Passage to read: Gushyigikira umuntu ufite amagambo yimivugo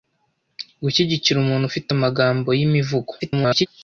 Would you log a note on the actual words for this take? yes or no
yes